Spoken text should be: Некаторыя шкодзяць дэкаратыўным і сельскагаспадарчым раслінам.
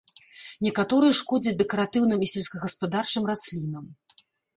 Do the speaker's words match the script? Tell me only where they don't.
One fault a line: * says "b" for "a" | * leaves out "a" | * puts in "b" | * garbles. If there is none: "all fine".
all fine